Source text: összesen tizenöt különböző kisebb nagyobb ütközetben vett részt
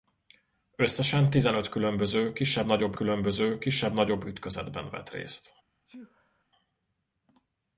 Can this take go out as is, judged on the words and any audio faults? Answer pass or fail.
fail